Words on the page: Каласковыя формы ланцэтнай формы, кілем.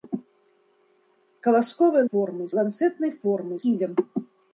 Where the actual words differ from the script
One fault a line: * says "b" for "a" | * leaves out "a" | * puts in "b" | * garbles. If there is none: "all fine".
all fine